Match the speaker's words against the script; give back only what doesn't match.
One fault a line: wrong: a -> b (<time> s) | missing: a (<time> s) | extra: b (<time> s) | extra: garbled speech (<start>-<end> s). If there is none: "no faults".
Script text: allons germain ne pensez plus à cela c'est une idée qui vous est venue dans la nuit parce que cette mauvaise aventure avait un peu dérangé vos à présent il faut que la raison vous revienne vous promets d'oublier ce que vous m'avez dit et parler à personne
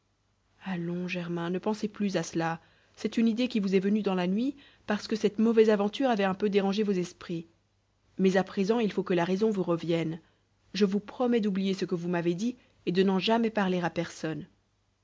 extra: esprits mais (6.9 s)
extra: je (10.7 s)
extra: de n'en jamais (12.9 s)